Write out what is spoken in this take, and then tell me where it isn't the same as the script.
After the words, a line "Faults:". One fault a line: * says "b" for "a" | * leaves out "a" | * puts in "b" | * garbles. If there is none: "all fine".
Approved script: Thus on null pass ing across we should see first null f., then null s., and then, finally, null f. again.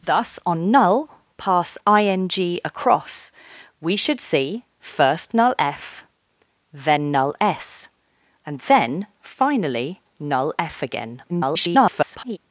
Thus on null pass ing across we should see first null f., then null s., and then, finally, null f. again. [garbled]
Faults:
* garbles